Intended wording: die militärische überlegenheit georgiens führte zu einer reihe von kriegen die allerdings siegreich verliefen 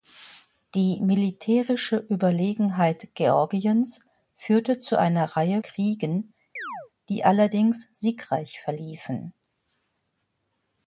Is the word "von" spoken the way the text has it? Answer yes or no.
no